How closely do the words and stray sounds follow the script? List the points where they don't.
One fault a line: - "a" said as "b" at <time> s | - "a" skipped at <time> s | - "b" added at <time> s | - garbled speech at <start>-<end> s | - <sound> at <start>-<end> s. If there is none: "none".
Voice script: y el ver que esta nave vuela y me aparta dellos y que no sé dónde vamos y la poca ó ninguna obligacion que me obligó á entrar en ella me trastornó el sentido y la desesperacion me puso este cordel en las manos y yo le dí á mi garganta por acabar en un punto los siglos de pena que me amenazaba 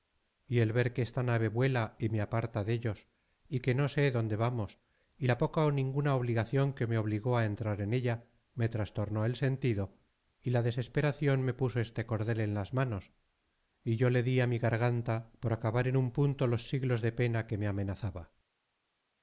none